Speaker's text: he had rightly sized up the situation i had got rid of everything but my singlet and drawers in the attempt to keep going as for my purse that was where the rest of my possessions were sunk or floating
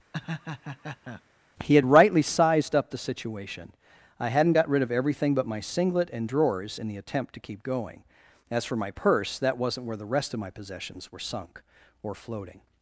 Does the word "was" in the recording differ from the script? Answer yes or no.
yes